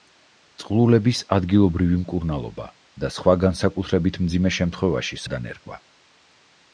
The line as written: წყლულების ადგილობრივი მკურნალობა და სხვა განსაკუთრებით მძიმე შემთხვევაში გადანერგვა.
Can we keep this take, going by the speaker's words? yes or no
yes